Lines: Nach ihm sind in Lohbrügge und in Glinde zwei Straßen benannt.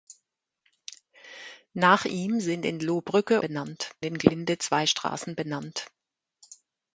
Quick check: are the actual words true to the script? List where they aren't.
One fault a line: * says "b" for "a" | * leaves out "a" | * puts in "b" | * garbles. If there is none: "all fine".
* says "benannt" for "und"